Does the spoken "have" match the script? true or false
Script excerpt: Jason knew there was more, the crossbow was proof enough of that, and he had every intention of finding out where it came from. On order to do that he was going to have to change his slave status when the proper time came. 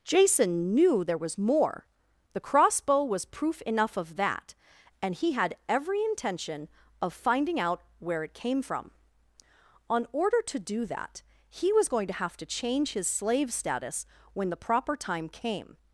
true